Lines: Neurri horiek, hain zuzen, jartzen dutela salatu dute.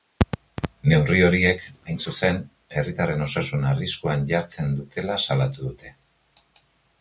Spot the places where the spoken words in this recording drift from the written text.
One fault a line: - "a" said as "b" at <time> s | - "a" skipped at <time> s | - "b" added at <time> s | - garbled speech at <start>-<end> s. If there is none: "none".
- "herritarren osasuna arriskuan" added at 2.8 s